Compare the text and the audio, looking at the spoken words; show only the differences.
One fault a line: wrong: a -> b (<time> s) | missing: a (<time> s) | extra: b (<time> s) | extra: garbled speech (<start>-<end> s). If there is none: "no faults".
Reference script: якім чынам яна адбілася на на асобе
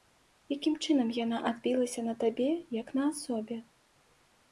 extra: табе як (2.2 s)